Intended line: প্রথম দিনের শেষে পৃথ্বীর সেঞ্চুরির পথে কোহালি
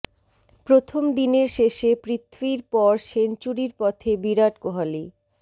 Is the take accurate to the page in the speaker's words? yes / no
no